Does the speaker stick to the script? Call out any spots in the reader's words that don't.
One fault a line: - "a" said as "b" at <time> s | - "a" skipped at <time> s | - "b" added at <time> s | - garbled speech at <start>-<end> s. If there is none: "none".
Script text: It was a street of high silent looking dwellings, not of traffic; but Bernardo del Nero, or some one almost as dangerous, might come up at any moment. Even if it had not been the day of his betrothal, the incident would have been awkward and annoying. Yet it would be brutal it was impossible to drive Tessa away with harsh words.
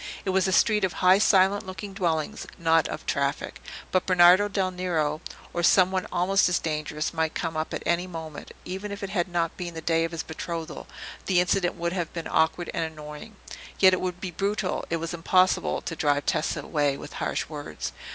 none